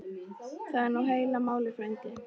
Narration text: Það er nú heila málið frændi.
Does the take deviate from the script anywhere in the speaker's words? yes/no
no